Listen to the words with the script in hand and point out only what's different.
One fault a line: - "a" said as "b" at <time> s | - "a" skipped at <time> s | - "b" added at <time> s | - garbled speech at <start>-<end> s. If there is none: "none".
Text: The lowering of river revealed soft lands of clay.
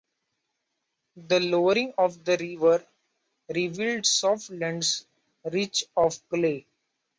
- "the" added at 2.2 s
- "rich" added at 5.4 s